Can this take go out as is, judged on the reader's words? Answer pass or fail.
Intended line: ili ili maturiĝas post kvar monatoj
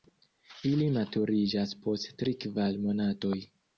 fail